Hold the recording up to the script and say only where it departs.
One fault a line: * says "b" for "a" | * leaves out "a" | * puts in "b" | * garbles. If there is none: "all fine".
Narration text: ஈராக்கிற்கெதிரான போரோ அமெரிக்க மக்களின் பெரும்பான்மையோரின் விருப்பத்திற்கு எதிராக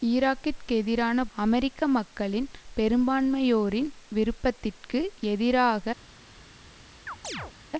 * leaves out "போரோ"